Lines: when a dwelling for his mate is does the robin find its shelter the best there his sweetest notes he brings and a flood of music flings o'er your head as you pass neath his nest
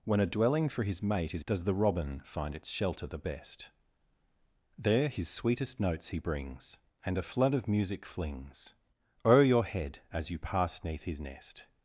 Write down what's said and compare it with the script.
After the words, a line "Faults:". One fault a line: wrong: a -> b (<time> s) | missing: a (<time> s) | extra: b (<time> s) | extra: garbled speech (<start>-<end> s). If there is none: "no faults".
when a dwelling for his mate is does the robin find its shelter the best there his sweetest notes he brings and a flood of music flings o'er your head as you pass neath his nest
Faults:
no faults